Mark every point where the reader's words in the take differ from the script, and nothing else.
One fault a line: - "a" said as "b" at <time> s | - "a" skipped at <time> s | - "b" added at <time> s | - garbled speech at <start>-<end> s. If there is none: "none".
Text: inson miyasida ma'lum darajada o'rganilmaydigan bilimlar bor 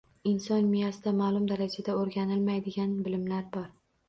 none